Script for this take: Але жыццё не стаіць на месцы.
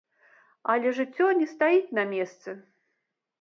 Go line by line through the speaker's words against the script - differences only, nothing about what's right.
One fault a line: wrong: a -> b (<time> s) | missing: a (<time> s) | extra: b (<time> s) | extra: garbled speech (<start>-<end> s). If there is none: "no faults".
no faults